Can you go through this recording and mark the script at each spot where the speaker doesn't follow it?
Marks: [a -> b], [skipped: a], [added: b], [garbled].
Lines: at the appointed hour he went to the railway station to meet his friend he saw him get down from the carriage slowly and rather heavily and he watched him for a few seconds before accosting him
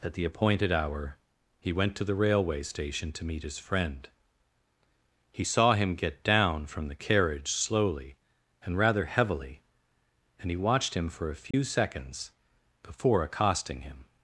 at the appointed hour he went to the railway station to meet his friend he saw him get down from the carriage slowly and rather heavily and he watched him for a few seconds before accosting him